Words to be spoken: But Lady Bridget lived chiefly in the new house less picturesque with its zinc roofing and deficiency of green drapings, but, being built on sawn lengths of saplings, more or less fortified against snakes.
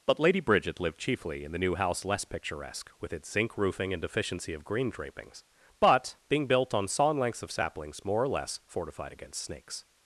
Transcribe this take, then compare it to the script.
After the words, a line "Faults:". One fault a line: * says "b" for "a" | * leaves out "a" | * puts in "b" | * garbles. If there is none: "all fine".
But Lady Bridget lived chiefly in the new house less picturesque with its zinc roofing and deficiency of green drapings, but, being built on sawn lengths of saplings, more or less fortified against snakes.
Faults:
all fine